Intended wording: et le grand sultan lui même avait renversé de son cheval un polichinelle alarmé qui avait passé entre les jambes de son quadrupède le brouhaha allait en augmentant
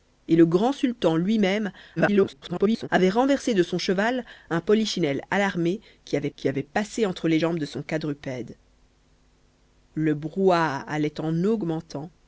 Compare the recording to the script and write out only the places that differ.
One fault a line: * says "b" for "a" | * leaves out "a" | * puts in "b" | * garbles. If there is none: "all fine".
* garbles
* puts in "qui avait"